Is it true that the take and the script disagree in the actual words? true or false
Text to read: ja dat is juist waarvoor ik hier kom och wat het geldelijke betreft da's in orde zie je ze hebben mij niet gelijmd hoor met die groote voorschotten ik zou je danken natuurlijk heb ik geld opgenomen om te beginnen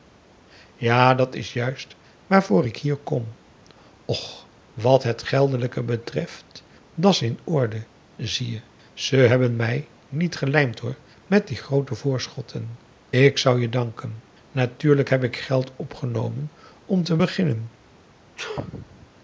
false